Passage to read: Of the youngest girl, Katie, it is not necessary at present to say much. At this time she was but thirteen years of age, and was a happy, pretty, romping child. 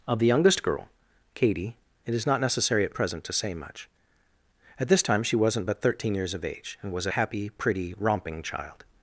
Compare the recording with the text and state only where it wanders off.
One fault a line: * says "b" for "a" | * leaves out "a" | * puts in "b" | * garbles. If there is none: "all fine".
* says "wasn't" for "was"